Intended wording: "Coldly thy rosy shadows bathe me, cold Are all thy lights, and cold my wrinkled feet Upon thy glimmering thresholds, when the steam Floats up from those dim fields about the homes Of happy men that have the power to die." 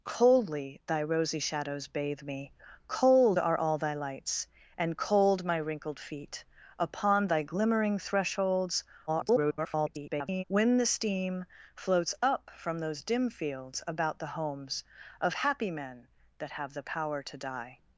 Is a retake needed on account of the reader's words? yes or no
yes